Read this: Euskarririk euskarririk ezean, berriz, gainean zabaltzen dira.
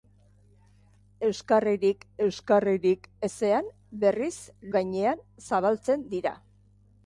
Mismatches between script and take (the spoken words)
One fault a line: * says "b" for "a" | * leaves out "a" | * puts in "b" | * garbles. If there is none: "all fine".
all fine